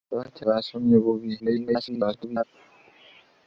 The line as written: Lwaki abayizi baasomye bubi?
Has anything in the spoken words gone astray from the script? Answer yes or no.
yes